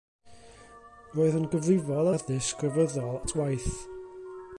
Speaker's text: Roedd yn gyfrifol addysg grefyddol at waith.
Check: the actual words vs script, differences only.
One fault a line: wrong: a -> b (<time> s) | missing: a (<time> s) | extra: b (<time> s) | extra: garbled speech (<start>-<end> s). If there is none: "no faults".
no faults